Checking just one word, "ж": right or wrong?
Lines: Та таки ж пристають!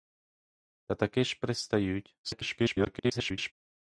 right